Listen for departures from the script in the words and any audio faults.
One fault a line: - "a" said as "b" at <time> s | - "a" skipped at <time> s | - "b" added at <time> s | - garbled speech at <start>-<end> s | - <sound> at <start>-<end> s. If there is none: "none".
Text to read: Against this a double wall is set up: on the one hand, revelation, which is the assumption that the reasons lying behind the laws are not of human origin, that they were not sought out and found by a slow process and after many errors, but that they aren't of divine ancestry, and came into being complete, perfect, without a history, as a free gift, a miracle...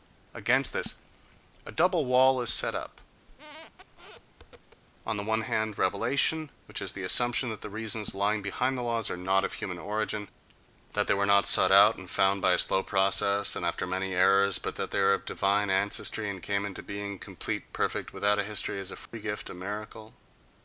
- squeak at 3.3-4.8 s
- "aren't" said as "are" at 15.0 s
- dropout at 19.1-19.1 s